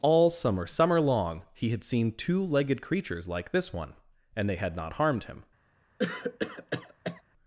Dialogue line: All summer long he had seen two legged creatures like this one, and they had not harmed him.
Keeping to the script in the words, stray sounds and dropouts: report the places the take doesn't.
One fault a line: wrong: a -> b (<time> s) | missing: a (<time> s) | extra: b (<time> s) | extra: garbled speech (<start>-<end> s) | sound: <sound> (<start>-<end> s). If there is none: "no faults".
extra: summer (0.7 s)
sound: cough (6.0-7.2 s)